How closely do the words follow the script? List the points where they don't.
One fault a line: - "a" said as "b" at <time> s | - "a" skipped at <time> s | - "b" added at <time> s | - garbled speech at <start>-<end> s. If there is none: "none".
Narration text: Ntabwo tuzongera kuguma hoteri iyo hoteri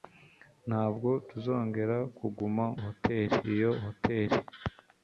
none